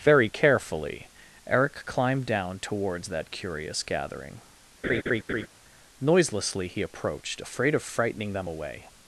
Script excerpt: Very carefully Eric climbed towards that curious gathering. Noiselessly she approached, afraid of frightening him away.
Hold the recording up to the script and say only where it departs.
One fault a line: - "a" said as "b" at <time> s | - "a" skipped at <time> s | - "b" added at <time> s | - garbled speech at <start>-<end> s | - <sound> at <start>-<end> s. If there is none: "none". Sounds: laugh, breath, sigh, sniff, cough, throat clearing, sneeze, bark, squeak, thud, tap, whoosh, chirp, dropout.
- "down" added at 2.2 s
- laugh at 4.8-5.5 s
- "she" said as "he" at 6.7 s
- "him" said as "them" at 8.3 s